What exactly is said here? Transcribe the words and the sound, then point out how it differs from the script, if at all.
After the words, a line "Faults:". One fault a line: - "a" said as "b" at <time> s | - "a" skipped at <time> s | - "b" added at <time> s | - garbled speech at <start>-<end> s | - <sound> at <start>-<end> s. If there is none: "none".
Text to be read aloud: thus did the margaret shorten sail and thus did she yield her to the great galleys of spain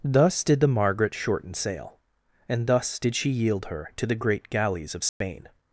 thus did the margaret shorten sail and thus did she yield her to the great galleys of spain
Faults:
- dropout at 5.1-5.2 s